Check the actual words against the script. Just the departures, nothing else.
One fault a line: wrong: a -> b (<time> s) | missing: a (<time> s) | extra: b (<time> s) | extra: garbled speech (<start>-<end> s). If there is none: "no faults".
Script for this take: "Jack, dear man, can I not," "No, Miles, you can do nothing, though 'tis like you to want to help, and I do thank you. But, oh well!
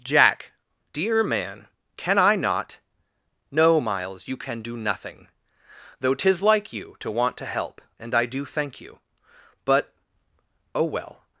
no faults